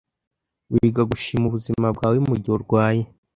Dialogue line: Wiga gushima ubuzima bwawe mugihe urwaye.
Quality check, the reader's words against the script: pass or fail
pass